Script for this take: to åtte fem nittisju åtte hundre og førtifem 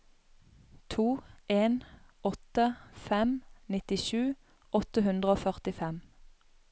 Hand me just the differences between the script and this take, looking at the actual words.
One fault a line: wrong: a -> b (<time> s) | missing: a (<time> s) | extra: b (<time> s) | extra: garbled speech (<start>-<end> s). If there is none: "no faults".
extra: en (1.5 s)